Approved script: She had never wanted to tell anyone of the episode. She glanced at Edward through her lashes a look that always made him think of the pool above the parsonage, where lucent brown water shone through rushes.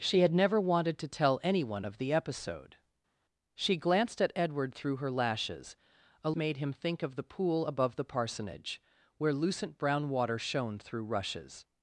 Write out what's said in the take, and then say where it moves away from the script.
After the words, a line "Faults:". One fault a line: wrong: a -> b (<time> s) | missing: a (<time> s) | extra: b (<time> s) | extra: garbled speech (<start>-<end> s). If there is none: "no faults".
She had never wanted to tell anyone of the episode. She glanced at Edward through her lashes a made him think of the pool above the parsonage, where lucent brown water shone through rushes.
Faults:
missing: look that always (6.3 s)